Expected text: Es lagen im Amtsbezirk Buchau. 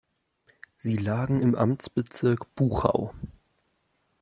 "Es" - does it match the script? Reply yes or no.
no